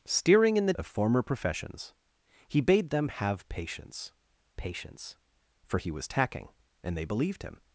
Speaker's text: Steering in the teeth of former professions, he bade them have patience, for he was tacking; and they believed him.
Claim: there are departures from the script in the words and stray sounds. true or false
true